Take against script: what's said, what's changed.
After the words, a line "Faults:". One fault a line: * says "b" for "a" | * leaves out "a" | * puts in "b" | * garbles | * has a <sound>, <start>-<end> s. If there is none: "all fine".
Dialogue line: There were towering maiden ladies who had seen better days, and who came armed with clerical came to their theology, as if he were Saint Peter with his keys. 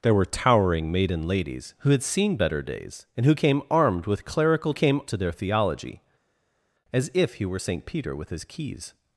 There were towering maiden ladies who had seen better days, and who came armed with clerical came to their theology, as if he were Saint Peter with his keys.
Faults:
all fine